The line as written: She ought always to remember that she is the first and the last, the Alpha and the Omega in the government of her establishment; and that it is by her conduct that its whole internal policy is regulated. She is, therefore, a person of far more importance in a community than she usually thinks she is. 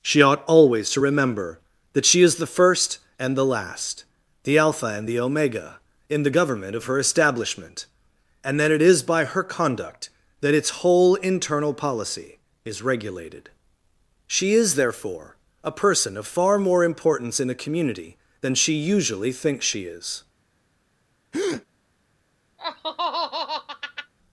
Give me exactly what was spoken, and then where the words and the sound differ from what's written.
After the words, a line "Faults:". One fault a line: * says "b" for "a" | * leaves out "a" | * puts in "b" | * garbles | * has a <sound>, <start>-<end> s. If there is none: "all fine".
She ought always to remember that she is the first and the last, the Alpha and the Omega in the government of her establishment; and that it is by her conduct that its whole internal policy is regulated. She is, therefore, a person of far more importance in a community than she usually thinks she is.
Faults:
* has a breath, 21.3-21.7 s
* has a laugh, 22.6-24.1 s